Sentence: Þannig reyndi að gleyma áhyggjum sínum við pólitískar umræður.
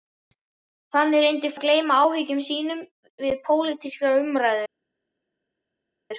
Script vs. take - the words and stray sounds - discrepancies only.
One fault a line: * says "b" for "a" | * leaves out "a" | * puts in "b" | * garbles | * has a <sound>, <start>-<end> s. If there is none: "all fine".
all fine